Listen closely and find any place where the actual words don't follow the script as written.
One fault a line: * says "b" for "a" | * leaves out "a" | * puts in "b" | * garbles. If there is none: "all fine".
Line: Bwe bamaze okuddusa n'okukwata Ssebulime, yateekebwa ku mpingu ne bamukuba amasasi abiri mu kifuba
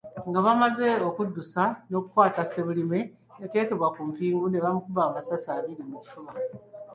* says "Nga" for "Bwe"